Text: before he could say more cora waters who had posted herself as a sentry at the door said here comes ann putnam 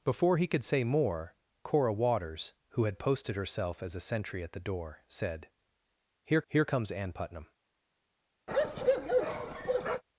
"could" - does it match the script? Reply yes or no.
yes